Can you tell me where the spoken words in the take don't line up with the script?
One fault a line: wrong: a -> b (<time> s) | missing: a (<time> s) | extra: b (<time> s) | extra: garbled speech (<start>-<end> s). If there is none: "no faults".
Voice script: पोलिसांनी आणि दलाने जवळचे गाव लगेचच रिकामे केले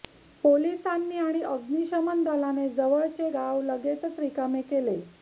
extra: अग्निशमन (1.4 s)